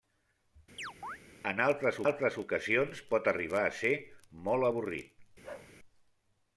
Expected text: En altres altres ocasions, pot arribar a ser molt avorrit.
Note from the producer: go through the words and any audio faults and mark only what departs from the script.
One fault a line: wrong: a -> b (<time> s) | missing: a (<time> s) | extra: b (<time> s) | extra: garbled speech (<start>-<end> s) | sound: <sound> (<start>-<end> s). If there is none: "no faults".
sound: chirp (0.8-1.2 s)
sound: bark (5.4-5.7 s)